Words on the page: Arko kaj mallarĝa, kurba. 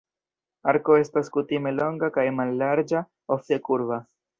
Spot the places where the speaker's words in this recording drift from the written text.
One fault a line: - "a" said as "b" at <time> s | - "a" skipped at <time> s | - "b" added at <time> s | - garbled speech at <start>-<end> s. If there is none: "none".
- "estas kutime longa" added at 1.0 s
- "ofte" added at 3.4 s